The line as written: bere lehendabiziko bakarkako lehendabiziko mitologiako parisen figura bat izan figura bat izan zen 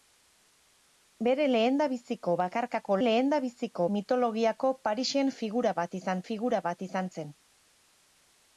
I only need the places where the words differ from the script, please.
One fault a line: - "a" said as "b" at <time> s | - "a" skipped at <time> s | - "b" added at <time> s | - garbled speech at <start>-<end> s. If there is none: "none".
none